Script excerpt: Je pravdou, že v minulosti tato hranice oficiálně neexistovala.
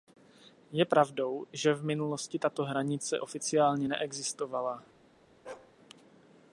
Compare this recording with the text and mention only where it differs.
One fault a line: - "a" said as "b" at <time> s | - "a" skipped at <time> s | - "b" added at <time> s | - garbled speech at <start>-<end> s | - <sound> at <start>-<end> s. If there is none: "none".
- bark at 5.4-5.7 s